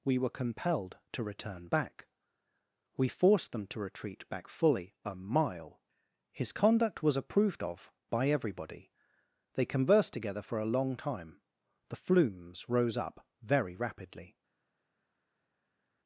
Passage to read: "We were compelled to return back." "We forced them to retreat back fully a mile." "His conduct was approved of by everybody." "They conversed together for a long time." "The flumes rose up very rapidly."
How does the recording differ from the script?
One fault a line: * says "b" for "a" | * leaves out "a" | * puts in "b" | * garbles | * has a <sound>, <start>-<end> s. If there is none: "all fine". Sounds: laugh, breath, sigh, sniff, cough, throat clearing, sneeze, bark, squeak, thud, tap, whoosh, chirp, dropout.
all fine